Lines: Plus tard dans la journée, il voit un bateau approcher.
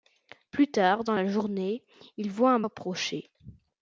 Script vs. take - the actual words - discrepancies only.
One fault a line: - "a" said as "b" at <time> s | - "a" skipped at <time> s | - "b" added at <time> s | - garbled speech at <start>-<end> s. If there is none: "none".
- "bateau" skipped at 2.6 s